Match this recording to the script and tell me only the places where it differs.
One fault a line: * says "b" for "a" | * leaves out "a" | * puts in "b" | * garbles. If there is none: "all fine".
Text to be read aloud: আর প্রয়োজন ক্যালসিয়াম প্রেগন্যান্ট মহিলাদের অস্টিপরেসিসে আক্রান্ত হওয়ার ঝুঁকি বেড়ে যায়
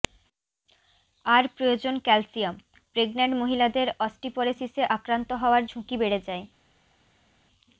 all fine